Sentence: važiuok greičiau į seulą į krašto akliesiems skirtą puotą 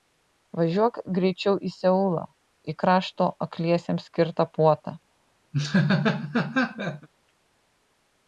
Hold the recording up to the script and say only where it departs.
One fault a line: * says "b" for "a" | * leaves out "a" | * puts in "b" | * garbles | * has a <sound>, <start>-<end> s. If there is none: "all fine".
* has a laugh, 5.5-7.1 s